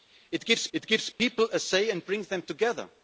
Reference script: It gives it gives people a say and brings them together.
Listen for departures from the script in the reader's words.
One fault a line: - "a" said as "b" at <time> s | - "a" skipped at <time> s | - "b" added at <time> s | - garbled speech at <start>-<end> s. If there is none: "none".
none